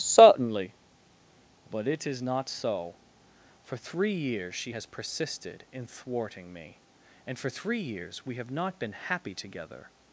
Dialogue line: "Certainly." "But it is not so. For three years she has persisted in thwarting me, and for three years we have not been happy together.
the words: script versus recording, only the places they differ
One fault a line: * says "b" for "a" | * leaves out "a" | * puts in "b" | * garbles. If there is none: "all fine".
all fine